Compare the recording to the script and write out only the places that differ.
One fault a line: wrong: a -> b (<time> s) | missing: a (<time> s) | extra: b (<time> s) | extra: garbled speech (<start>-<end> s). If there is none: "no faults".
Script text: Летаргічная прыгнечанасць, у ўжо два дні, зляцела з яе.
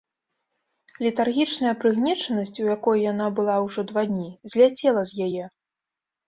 extra: якой яна была (2.8 s)